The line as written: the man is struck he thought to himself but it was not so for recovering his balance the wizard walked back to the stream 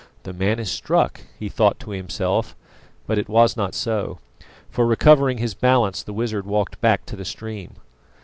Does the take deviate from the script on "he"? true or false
false